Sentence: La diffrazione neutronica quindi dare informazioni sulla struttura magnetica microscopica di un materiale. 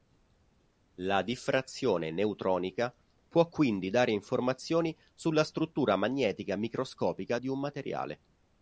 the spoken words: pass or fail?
fail